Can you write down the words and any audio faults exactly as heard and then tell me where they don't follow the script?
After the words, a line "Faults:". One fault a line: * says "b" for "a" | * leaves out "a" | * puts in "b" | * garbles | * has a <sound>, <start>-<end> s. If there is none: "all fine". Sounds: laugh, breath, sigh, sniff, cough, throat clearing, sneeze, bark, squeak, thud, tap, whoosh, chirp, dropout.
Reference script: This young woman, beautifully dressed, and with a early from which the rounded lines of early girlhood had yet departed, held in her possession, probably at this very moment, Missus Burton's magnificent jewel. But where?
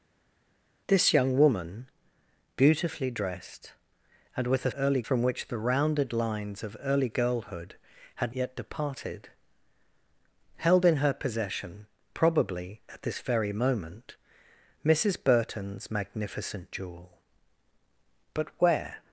This young woman, beautifully dressed, and with a early from which the rounded lines of early girlhood had yet departed, held in her possession, probably at this very moment, Missus Burton's magnificent jewel. But where?
Faults:
all fine